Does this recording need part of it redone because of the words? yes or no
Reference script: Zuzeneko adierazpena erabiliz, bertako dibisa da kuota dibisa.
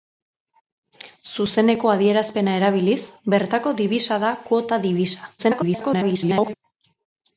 yes